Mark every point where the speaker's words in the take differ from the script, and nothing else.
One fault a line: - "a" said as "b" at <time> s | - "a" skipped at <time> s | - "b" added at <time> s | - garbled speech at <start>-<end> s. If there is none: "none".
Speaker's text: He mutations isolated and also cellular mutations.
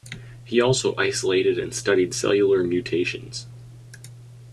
- "mutations" said as "also" at 0.6 s
- "also" said as "studied" at 1.8 s